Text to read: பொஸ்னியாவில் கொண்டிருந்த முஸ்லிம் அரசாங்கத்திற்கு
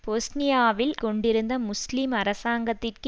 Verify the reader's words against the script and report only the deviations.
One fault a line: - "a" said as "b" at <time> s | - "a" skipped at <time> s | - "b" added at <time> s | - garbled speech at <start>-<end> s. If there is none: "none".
none